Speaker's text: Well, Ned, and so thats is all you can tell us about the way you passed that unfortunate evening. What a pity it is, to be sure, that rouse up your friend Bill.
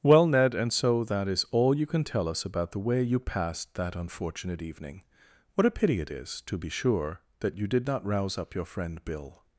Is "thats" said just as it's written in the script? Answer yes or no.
no